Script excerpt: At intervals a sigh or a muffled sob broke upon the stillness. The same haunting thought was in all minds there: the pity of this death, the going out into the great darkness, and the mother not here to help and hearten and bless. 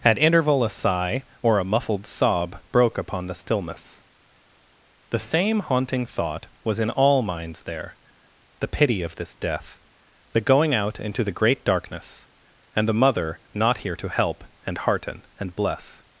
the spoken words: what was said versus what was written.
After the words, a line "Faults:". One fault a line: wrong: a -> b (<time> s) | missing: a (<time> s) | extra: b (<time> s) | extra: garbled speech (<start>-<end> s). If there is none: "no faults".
At interval a sigh or a muffled sob broke upon the stillness. The same haunting thought was in all minds there: the pity of this death, the going out into the great darkness, and the mother not here to help and hearten and bless.
Faults:
wrong: intervals -> interval (0.2 s)